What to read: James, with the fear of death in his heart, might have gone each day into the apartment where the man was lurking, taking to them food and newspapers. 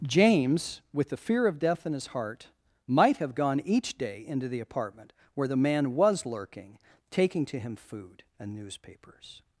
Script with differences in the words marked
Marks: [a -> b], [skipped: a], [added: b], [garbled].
James, with the fear of death in his heart, might have gone each day into the apartment where the man was lurking, taking to [them -> him] food and newspapers.